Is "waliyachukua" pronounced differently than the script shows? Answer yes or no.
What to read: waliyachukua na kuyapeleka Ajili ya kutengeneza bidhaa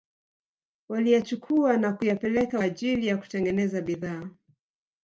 no